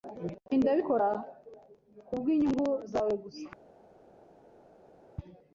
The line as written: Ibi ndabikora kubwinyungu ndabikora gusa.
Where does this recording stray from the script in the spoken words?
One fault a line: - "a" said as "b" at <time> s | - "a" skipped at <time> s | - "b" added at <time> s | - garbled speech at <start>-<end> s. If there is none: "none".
- "ndabikora" said as "zawe" at 2.9 s